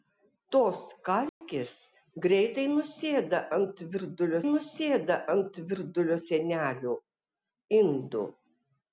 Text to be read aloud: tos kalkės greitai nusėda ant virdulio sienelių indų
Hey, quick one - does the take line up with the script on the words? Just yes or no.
no